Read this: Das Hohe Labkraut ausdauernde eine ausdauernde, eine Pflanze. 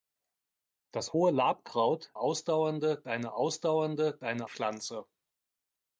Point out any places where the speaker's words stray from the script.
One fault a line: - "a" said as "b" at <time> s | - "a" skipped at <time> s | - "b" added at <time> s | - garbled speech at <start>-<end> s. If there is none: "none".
none